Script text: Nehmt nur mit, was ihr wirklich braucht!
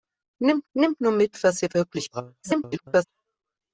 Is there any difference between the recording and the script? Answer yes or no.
yes